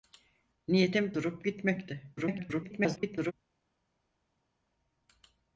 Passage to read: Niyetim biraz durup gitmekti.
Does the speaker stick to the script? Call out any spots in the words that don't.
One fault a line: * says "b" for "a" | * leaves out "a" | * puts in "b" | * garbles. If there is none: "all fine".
* leaves out "biraz"
* garbles